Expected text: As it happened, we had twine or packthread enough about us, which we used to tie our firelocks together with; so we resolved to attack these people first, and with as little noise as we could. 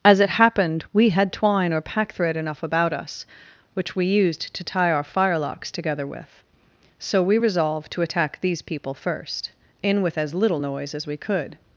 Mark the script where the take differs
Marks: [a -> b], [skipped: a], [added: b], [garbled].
As it happened, we had twine or packthread enough about us, which we used to tie our firelocks together with; so we resolved to attack these people first, [and -> in] with as little noise as we could.